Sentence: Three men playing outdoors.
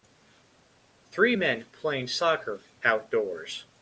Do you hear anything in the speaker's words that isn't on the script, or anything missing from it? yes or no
yes